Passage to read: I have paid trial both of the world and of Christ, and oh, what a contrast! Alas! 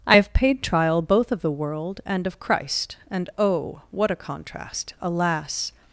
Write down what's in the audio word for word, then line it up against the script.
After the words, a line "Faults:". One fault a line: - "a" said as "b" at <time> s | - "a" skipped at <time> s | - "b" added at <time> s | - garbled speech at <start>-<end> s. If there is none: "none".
I have paid trial both of the world and of Christ, and oh, what a contrast! Alas!
Faults:
none